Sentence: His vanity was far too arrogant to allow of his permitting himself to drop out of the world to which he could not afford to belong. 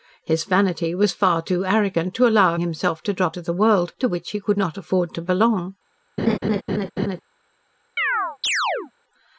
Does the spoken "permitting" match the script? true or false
false